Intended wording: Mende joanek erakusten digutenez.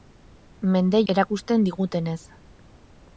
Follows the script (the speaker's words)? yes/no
no